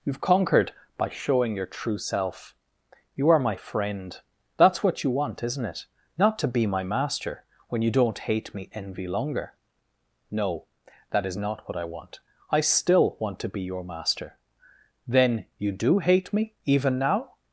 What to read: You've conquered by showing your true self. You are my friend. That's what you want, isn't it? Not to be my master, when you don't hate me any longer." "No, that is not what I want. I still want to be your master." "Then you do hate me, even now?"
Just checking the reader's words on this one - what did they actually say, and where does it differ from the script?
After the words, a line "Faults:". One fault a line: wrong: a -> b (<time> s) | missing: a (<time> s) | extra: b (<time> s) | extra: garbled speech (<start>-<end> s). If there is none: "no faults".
You've conquered by showing your true self. You are my friend. That's what you want, isn't it? Not to be my master, when you don't hate me envy longer." "No, that is not what I want. I still want to be your master." "Then you do hate me, even now?"
Faults:
wrong: any -> envy (8.7 s)